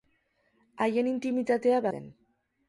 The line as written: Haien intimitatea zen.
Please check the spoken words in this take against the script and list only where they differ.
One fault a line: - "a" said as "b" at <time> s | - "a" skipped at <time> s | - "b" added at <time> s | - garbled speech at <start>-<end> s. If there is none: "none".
none